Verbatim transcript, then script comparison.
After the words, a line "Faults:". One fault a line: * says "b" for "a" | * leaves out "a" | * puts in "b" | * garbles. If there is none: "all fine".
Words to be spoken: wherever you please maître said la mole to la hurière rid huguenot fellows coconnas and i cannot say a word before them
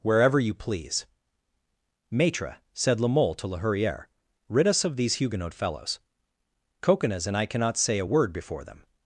wherever you please maître said la mole to la hurière rid us of these huguenot fellows coconnas and i cannot say a word before them
Faults:
* puts in "us of these"